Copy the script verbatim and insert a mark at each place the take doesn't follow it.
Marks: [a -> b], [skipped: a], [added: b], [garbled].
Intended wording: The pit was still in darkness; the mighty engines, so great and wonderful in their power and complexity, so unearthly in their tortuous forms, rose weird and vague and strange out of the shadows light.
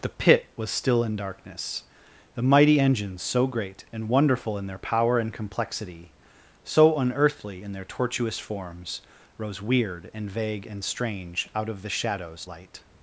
The pit was still in darkness; the mighty engines, so great and wonderful in their power and complexity, so unearthly in their tortuous forms, rose weird and vague and strange out of the shadows light.